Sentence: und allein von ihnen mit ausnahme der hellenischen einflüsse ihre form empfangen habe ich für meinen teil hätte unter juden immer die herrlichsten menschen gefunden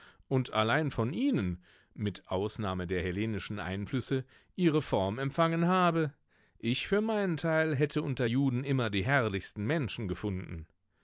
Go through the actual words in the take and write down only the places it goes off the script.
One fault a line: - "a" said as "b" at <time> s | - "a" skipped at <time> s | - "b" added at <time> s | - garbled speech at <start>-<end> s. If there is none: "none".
none